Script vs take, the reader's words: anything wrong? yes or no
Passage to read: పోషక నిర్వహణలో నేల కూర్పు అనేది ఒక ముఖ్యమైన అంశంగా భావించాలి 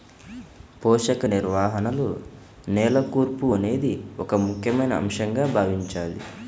no